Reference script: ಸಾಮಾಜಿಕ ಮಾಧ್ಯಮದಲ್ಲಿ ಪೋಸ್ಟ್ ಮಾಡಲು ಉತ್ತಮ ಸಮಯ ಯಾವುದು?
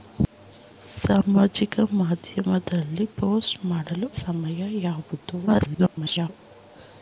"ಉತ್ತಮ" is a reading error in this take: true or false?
true